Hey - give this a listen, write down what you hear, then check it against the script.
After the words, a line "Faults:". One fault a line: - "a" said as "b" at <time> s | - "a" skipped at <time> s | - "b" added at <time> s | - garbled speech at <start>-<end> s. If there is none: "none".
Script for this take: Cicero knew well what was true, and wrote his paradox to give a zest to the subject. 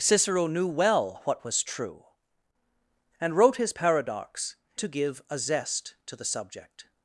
Cicero knew well what was true, and wrote his paradox to give a zest to the subject.
Faults:
none